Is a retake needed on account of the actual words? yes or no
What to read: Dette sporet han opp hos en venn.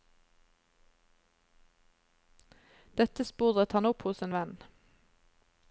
no